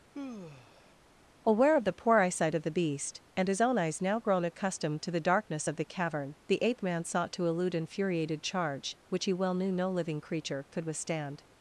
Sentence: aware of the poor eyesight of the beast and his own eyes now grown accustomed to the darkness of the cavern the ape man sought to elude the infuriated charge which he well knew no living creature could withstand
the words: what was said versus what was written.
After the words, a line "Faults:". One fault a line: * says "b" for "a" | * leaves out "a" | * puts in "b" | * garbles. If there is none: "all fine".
aware of the poor eyesight of the beast and his own eyes now grown accustomed to the darkness of the cavern the ape man sought to elude infuriated charge which he well knew no living creature could withstand
Faults:
* leaves out "the"